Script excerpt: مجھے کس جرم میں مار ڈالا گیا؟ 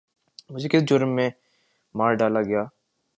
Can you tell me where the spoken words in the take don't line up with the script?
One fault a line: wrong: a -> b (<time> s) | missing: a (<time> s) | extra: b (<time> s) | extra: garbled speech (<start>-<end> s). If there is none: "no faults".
no faults